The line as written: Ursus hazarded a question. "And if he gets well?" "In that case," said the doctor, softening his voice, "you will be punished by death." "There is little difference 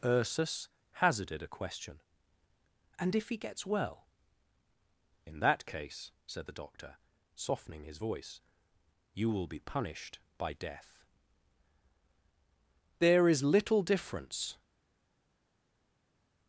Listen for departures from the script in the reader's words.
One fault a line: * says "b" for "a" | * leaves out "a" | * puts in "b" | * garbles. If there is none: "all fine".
all fine